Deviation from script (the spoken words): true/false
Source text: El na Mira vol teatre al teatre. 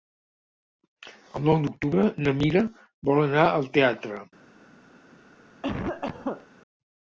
true